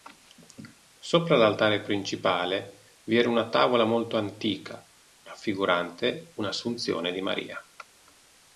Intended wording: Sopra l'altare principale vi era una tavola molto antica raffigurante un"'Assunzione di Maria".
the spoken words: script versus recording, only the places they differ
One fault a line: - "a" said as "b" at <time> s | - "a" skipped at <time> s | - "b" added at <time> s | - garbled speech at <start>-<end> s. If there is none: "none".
none